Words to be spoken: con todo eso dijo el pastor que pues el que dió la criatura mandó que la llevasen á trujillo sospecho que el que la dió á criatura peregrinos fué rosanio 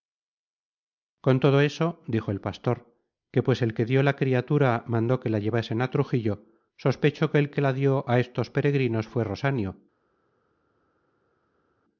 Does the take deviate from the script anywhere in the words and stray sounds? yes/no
yes